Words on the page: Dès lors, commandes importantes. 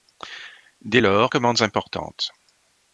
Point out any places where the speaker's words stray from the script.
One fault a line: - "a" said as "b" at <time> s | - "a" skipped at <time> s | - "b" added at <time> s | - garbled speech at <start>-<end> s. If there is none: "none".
none